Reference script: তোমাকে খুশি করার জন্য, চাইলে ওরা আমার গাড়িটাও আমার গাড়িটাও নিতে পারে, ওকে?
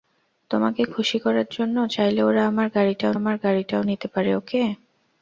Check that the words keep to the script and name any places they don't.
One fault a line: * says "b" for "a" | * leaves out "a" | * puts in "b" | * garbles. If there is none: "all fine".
all fine